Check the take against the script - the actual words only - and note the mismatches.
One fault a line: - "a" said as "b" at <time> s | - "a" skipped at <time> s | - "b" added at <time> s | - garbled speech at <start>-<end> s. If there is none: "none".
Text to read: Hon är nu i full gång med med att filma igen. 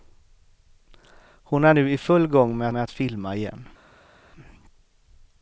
none